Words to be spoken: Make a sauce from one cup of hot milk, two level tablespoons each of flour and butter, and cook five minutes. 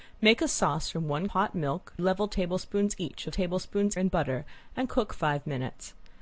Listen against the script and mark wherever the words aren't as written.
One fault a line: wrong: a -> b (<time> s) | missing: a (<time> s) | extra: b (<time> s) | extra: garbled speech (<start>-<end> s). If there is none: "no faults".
missing: cup of (1.3 s)
missing: two (1.9 s)
wrong: flour -> tablespoons (3.3 s)